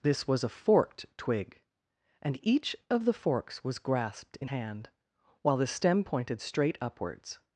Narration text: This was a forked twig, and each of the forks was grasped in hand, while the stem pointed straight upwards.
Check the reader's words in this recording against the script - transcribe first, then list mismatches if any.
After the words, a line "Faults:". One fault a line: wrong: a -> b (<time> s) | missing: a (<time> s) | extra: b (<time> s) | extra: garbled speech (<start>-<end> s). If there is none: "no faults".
This was a forked twig, and each of the forks was grasped in hand, while the stem pointed straight upwards.
Faults:
no faults